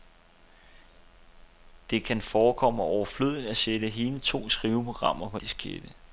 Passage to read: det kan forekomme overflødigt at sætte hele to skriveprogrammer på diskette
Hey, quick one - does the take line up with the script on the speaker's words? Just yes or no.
yes